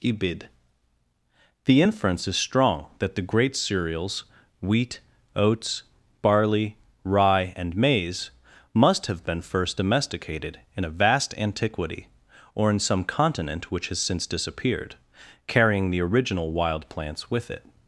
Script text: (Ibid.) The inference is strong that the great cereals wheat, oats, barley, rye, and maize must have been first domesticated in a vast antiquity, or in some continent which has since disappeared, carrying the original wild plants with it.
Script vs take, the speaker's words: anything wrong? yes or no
no